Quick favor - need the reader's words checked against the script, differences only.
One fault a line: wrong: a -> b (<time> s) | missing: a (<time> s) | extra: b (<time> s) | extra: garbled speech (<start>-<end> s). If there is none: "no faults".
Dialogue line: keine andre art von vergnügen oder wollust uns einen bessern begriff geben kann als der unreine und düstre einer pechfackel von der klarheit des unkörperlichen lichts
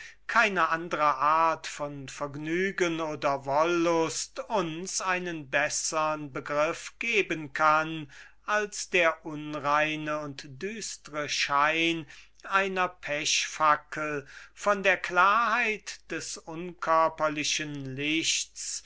extra: schein (11.3 s)